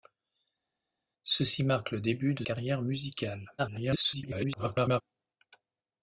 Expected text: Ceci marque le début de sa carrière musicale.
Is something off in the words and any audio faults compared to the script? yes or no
yes